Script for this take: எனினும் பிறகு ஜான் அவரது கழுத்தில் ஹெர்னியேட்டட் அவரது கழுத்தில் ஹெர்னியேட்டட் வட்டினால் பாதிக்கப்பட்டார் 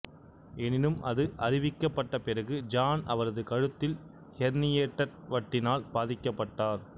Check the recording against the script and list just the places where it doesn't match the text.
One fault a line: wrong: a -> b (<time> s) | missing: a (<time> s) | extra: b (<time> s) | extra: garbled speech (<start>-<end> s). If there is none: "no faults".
extra: அது அறிவிக்கப்பட்ட (1.0 s)
missing: அவரது கழுத்தில் ஹெர்னியேட்டட் (5.2 s)